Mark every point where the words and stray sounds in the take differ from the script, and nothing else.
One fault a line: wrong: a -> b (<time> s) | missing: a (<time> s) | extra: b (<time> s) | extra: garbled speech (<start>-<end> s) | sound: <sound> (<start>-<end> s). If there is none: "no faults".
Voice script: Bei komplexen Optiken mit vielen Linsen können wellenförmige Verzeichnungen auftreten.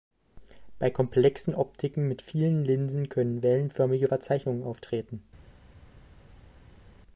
no faults